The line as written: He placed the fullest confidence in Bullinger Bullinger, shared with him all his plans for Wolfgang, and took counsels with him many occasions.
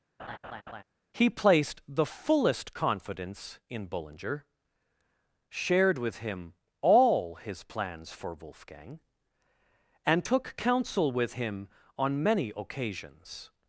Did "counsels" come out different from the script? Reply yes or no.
yes